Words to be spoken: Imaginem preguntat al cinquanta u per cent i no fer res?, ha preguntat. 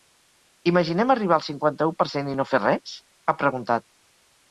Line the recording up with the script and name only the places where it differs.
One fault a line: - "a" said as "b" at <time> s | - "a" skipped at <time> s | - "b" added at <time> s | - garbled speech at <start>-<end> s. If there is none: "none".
- "preguntat" said as "arribar" at 1.1 s